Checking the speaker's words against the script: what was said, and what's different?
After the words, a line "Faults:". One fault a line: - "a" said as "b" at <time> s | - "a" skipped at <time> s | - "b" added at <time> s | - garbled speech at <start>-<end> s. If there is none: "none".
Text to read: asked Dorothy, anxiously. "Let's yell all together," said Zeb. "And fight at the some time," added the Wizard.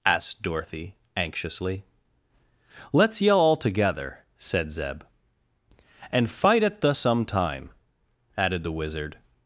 asked Dorothy, anxiously. "Let's yell all together," said Zeb. "And fight at the some time," added the Wizard.
Faults:
none